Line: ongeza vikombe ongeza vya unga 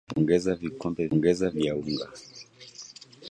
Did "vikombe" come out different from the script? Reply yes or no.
no